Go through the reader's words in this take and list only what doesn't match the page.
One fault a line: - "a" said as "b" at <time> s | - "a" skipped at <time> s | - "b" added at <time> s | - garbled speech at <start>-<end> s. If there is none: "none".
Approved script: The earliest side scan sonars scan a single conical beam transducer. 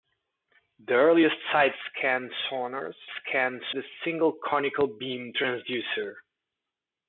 none